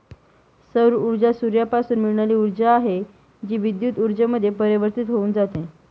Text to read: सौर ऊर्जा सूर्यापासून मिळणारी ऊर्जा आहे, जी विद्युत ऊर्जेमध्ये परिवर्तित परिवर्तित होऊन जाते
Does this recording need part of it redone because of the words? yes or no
yes